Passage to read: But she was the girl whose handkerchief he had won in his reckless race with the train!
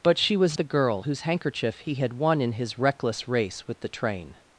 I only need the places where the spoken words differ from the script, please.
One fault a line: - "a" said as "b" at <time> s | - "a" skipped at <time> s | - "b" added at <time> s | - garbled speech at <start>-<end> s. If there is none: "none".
none